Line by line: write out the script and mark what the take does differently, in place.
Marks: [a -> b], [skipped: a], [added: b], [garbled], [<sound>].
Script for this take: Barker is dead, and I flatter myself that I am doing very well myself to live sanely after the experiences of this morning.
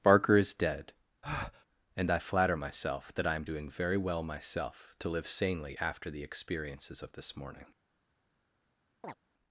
Barker is dead, [breath] and I flatter myself that I am doing very well myself to live sanely after the experiences of this morning. [chirp]